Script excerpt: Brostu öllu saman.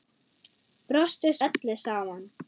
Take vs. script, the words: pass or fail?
pass